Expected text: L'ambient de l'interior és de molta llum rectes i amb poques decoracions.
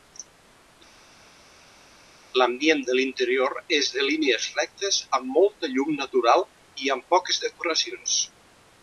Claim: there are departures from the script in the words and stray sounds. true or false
true